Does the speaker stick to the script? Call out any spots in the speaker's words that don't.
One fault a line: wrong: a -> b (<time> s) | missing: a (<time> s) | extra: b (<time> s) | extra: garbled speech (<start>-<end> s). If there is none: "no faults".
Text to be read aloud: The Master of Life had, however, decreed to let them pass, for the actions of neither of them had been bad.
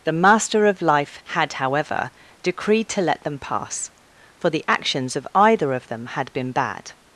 wrong: neither -> either (5.3 s)